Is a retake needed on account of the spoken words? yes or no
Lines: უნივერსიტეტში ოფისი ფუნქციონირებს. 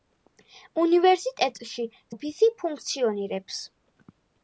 no